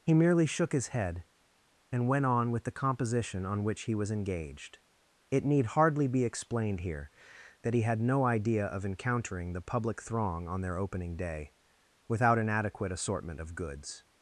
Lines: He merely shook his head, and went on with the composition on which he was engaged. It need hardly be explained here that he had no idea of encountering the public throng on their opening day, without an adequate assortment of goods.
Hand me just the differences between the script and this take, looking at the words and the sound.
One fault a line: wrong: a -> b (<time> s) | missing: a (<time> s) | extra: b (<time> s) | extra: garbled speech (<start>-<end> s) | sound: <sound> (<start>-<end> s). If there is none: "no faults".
no faults